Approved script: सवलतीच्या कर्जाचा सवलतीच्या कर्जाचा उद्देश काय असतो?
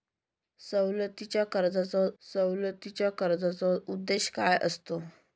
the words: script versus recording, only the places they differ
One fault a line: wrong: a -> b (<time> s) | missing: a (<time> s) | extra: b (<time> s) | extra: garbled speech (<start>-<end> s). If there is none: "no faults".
no faults